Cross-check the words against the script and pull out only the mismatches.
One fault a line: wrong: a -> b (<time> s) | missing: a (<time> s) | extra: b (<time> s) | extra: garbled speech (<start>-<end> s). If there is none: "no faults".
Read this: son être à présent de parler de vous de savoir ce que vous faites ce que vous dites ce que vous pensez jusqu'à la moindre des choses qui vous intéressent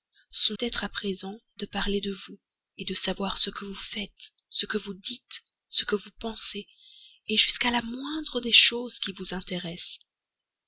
no faults